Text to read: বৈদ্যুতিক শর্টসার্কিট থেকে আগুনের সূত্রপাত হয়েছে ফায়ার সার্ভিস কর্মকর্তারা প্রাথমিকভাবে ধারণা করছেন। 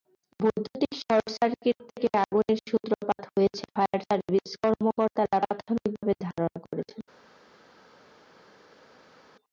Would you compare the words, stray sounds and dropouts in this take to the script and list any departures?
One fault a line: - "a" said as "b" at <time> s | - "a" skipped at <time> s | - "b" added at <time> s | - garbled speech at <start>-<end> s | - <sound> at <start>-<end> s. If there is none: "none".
none